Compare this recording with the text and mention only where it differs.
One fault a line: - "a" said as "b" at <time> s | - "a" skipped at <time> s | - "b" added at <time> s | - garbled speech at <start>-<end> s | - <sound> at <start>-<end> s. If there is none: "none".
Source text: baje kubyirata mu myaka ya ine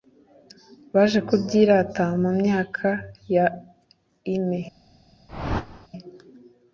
- whoosh at 5.3-5.9 s